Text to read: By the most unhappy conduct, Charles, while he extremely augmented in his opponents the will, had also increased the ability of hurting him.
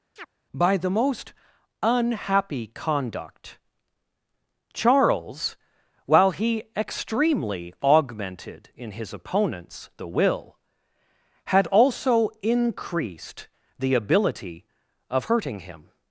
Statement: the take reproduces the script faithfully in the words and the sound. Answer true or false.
false